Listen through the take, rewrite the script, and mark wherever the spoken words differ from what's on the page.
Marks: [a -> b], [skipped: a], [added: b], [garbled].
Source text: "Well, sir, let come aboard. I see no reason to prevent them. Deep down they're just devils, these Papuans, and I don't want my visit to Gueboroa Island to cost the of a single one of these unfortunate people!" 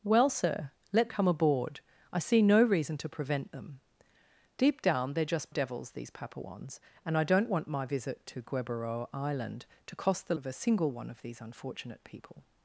"Well, sir, let come aboard. I see no reason to prevent them. Deep down they're just devils, these Papuans, and I don't want my visit to Gueboroa Island to cost the of a single one of these unfortunate people!"